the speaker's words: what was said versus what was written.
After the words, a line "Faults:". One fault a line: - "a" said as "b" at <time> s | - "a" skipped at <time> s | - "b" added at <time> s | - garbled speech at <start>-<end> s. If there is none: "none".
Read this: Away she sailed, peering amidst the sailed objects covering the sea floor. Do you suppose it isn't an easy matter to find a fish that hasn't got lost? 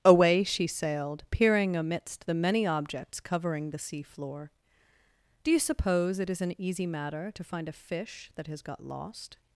Away she sailed, peering amidst the many objects covering the sea floor. Do you suppose it is an easy matter to find a fish that has got lost?
Faults:
- "sailed" said as "many" at 2.3 s
- "isn't" said as "is" at 6.3 s
- "hasn't" said as "has" at 8.5 s